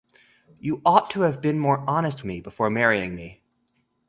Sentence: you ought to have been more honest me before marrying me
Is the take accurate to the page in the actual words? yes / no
yes